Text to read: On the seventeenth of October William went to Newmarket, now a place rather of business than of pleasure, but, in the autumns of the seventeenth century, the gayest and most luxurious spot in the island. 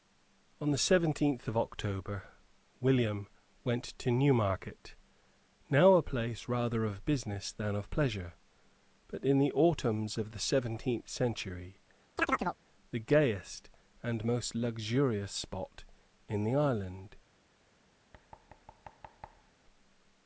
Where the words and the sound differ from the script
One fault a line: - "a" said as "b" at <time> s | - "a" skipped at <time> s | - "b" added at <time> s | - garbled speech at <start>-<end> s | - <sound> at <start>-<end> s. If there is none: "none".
- chirp at 12.2-12.6 s
- thud at 18.1-19.5 s